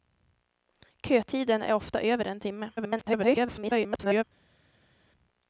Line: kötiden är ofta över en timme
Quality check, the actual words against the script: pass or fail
fail